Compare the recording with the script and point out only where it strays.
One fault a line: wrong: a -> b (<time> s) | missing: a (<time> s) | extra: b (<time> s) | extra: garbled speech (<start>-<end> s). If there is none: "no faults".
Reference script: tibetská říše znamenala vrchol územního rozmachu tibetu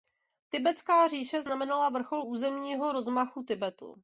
no faults